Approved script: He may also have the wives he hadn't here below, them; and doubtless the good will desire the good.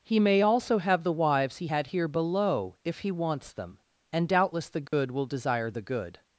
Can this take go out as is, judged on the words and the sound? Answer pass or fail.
fail